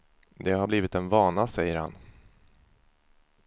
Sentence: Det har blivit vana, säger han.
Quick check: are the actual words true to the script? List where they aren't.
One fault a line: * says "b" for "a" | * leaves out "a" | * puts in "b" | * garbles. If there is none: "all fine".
* puts in "en"